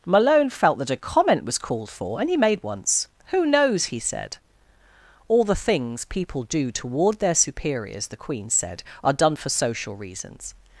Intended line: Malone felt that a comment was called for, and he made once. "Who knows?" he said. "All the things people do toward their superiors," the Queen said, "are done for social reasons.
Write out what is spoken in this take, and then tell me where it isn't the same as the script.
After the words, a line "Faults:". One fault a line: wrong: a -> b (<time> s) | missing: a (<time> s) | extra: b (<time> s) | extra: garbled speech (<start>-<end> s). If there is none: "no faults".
Malone felt that a comment was called for, and he made once. "Who knows?" he said. "All the things people do toward their superiors," the Queen said, "are done for social reasons.
Faults:
no faults